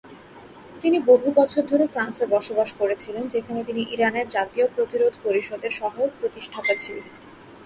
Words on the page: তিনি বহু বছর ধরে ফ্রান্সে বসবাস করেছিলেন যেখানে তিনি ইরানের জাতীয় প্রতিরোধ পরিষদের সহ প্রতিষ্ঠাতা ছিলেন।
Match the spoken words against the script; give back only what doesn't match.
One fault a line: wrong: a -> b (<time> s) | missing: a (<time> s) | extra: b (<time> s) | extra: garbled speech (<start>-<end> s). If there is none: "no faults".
no faults